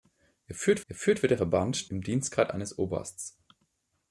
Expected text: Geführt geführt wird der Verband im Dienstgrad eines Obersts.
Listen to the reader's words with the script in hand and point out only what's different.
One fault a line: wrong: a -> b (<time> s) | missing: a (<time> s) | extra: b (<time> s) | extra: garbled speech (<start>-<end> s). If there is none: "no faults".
no faults